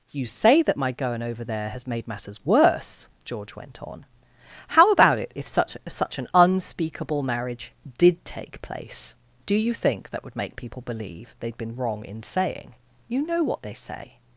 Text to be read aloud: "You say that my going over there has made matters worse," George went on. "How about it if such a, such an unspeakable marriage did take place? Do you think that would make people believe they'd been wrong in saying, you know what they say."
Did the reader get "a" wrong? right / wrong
wrong